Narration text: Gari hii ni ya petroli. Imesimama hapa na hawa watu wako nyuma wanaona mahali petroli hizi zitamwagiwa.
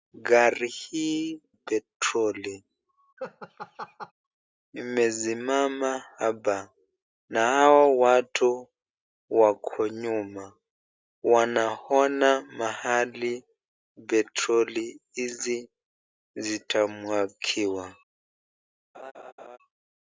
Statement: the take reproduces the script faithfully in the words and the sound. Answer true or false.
false